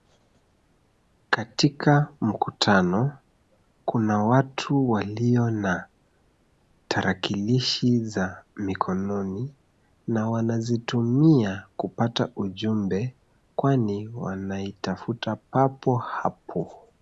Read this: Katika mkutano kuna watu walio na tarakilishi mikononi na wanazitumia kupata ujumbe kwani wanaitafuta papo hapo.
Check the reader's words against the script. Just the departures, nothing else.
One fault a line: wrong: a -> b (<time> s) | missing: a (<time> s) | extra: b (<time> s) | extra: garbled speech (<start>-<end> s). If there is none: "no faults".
extra: za (8.0 s)